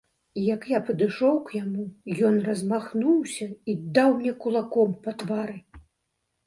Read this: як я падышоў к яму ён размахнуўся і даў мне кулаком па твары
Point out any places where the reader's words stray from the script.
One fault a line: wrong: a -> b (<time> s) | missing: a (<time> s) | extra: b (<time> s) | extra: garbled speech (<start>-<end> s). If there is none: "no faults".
no faults